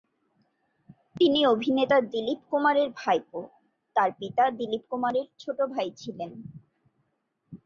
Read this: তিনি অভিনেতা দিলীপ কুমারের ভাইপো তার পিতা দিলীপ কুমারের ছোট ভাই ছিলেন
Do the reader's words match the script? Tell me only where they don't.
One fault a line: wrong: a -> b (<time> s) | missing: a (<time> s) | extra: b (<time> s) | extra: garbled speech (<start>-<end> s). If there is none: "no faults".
no faults